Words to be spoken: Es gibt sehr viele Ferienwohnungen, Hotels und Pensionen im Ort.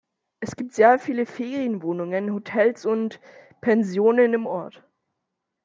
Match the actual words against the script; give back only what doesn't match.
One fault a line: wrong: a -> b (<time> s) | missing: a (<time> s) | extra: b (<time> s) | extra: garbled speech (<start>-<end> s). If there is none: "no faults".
no faults